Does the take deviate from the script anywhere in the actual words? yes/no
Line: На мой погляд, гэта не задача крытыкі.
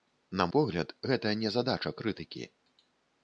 yes